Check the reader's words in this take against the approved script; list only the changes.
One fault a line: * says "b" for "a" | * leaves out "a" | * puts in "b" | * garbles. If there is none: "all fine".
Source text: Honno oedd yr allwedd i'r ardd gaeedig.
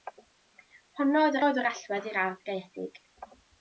* puts in "oedd"